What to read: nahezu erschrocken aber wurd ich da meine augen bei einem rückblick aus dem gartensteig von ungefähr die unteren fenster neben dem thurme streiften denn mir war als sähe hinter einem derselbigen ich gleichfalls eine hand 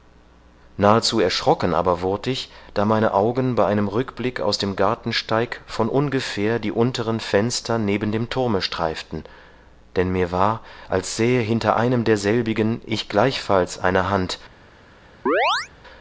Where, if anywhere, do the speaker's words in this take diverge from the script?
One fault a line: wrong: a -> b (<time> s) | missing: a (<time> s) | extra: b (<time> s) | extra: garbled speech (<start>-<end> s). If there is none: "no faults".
no faults